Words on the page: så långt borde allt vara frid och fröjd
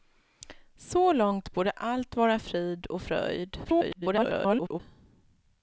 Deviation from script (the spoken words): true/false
true